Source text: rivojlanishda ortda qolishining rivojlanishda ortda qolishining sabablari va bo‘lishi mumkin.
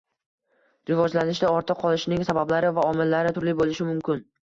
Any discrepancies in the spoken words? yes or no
yes